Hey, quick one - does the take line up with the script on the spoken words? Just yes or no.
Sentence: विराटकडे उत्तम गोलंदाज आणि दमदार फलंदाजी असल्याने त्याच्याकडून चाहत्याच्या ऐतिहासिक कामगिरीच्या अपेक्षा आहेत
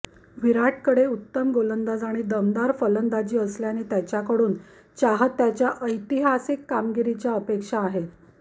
yes